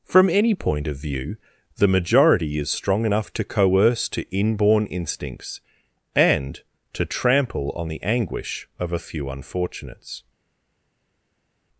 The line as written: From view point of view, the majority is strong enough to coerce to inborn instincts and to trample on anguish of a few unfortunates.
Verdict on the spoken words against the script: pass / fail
fail